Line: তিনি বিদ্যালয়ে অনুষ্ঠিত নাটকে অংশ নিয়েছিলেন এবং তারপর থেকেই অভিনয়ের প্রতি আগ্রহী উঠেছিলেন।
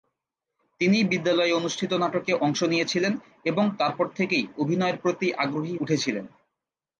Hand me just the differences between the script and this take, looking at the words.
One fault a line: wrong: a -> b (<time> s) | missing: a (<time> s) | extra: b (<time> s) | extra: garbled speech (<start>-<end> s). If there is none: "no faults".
no faults